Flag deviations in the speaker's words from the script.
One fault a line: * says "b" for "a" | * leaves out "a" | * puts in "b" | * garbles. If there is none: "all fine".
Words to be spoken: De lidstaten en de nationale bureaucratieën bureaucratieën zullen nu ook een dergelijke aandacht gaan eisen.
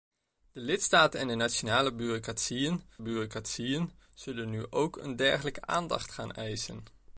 all fine